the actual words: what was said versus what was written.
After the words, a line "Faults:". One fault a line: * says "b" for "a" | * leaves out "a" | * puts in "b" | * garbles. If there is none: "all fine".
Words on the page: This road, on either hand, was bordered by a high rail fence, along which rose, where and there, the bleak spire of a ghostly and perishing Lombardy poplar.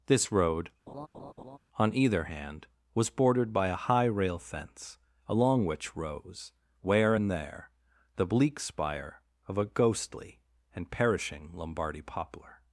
This road, on either hand, was bordered by a high rail fence, along which rose, where and there, the bleak spire of a ghostly and perishing Lombardy poplar.
Faults:
all fine